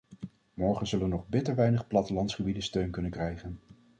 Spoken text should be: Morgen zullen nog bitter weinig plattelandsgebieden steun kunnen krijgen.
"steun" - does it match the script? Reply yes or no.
yes